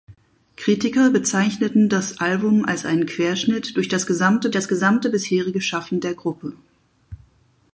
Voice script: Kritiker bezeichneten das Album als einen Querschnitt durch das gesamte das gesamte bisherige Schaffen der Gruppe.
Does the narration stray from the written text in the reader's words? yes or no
no